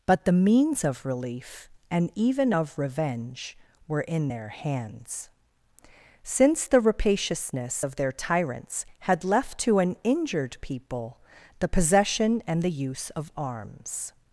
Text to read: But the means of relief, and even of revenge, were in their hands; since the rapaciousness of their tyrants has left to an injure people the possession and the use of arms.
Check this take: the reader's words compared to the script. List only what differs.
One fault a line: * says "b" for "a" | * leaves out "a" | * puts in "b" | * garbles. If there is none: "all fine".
* says "had" for "has"
* says "injured" for "injure"